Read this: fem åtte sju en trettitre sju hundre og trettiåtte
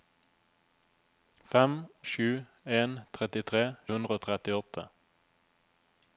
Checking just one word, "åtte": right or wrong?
wrong